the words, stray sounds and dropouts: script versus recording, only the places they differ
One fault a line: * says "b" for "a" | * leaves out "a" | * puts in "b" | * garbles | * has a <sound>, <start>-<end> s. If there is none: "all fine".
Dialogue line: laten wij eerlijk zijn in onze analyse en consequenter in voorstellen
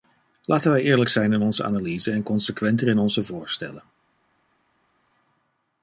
* puts in "onze"